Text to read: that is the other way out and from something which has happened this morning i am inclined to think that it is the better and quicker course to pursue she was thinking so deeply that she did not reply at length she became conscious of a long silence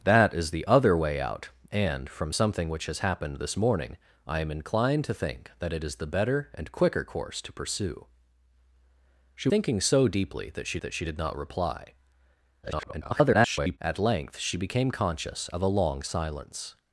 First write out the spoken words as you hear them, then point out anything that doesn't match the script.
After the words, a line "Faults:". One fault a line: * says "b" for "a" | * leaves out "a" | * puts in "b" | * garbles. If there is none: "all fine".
that is the other way out and from something which has happened this morning i am inclined to think that it is the better and quicker course to pursue she thinking so deeply that she that she did not reply [garbled] at length she became conscious of a long silence
Faults:
* leaves out "was"
* puts in "that she"
* garbles